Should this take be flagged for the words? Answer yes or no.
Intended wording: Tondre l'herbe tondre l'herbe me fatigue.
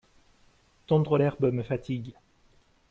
yes